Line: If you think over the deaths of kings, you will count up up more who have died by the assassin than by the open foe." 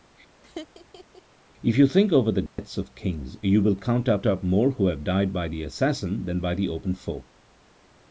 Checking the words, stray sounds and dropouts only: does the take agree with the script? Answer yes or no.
no